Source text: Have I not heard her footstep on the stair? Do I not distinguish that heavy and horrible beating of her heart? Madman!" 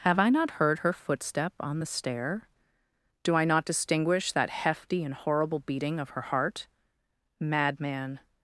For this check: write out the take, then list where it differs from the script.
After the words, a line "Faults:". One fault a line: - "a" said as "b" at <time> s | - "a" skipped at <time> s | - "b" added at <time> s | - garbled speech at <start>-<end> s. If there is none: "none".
Have I not heard her footstep on the stair? Do I not distinguish that hefty and horrible beating of her heart? Madman!"
Faults:
- "heavy" said as "hefty" at 4.5 s